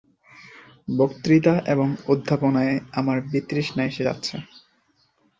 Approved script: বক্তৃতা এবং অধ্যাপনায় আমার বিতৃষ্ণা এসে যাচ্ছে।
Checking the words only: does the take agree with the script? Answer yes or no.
yes